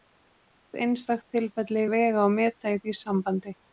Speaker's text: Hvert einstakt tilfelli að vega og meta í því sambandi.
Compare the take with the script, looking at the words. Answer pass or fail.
pass